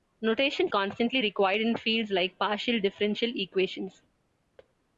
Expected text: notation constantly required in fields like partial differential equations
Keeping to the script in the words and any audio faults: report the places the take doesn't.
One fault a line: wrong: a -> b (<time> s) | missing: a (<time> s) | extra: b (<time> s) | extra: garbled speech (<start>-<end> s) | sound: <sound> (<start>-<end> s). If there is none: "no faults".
sound: thud (4.6-4.7 s)